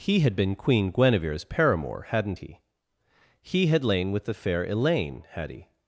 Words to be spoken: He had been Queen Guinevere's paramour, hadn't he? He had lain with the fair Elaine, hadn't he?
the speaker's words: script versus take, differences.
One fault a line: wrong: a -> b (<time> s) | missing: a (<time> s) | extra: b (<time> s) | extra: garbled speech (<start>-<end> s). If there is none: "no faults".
wrong: hadn't -> had (5.3 s)